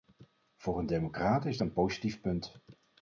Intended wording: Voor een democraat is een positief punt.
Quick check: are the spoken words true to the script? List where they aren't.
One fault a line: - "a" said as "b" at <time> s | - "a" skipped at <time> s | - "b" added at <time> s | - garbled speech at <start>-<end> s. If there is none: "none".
none